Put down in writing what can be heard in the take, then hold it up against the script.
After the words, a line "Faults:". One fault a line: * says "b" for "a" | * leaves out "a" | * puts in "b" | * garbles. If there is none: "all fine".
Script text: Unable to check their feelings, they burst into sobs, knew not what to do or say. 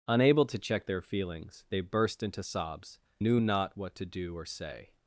Unable to check their feelings, they burst into sobs, knew not what to do or say.
Faults:
all fine